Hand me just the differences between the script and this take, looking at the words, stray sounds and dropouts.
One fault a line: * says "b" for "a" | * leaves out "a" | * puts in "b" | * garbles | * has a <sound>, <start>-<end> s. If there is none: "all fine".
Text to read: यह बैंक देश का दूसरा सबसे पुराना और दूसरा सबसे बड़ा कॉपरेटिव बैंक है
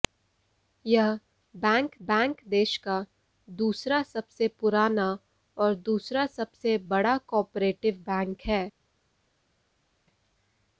* puts in "बैंक"